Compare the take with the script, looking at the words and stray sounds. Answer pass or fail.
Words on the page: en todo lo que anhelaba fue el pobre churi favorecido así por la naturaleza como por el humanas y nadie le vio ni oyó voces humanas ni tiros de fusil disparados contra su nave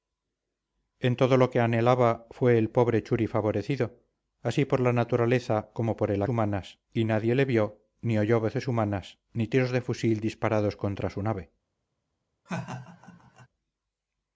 fail